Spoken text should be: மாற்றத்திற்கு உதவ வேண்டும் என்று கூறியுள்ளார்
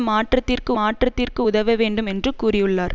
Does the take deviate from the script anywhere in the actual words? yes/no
yes